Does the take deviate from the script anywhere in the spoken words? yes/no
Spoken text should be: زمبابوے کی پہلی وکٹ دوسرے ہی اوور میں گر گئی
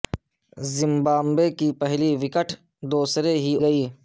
yes